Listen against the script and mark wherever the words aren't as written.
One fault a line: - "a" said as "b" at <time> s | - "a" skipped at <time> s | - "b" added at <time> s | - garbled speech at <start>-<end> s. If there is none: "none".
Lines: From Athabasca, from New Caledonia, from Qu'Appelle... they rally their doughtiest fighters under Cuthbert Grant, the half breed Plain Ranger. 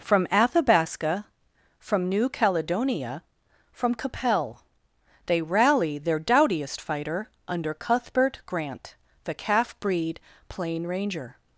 - "fighters" said as "fighter" at 6.8 s
- "half" said as "calf" at 9.3 s